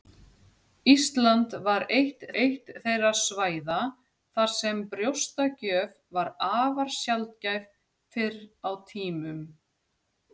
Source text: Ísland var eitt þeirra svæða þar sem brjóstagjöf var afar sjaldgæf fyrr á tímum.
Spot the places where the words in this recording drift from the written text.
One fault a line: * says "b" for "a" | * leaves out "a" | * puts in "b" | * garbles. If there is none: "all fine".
* puts in "eitt"